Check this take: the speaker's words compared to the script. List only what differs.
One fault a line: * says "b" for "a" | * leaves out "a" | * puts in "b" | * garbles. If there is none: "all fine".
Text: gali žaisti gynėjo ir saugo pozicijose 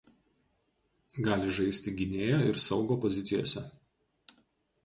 all fine